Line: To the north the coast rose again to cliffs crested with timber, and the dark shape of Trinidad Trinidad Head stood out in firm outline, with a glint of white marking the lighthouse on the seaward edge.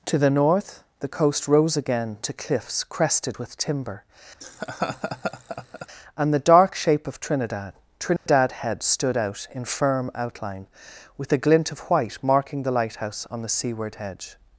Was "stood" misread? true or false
false